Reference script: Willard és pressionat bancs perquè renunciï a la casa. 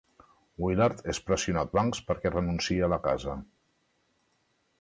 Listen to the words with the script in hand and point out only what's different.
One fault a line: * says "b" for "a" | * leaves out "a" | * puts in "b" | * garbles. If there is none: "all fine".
all fine